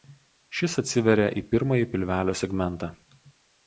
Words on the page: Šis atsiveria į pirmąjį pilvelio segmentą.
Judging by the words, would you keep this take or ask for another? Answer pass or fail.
pass